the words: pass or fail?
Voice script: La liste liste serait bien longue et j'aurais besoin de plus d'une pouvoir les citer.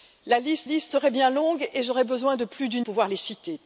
pass